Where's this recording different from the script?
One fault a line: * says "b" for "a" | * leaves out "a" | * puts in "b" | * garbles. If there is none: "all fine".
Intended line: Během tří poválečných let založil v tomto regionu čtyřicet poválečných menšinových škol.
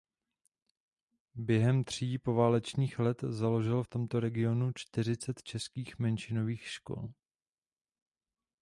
* says "českých" for "poválečných"